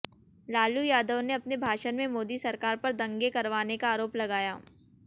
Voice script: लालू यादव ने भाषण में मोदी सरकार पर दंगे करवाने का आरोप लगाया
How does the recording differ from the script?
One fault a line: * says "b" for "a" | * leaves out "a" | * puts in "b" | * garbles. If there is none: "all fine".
* puts in "अपने"